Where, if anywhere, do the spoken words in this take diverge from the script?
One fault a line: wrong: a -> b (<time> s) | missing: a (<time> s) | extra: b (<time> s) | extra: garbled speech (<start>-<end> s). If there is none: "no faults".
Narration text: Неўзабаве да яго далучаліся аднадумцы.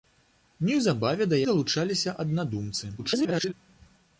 missing: яго (1.4 s)
extra: garbled speech (3.0-3.5 s)